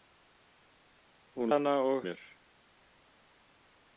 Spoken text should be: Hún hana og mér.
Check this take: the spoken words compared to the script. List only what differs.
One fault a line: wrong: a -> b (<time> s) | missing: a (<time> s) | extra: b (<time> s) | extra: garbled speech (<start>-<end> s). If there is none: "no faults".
no faults